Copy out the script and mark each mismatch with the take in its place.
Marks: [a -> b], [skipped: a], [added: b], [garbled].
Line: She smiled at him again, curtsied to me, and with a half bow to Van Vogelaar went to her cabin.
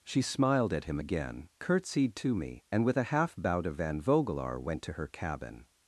She smiled at him again, curtsied to me, and with a half bow to Van Vogelaar went to her cabin.